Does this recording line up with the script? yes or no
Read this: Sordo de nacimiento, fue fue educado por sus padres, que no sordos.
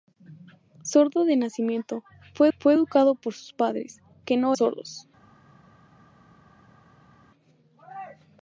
yes